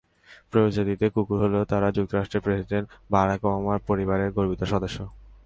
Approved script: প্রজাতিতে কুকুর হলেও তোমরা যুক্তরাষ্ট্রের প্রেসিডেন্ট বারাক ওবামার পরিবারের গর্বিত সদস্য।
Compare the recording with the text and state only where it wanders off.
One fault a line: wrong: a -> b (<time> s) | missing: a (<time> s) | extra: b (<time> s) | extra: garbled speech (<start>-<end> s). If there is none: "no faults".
wrong: তোমরা -> তারা (1.7 s)